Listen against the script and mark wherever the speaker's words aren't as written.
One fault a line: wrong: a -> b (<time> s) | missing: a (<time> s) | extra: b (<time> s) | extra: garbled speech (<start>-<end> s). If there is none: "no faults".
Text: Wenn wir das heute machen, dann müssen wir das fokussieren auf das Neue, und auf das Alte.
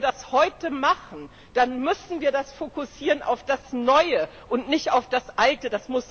extra: nicht (4.7 s)